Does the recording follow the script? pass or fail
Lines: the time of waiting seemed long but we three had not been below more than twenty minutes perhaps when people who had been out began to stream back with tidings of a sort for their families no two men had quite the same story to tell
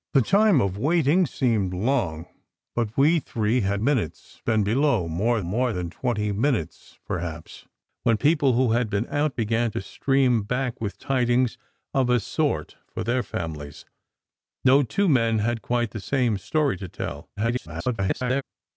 fail